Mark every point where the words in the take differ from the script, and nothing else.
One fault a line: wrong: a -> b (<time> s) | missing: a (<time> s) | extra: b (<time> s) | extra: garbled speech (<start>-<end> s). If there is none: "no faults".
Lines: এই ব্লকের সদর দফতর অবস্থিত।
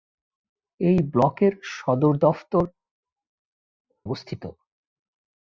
no faults